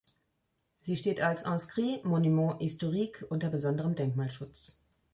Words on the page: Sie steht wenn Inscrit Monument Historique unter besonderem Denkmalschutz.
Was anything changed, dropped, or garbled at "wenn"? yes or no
yes